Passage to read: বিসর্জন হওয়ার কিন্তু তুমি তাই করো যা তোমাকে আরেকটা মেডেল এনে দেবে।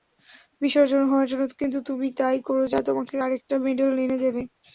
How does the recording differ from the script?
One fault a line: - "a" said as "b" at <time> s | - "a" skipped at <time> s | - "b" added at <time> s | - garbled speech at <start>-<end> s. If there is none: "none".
- "জন্য" added at 1.3 s